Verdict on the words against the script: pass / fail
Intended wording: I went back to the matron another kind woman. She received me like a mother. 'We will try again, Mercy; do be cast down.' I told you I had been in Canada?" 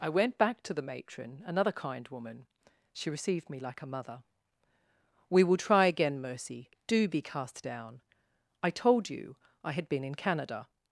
pass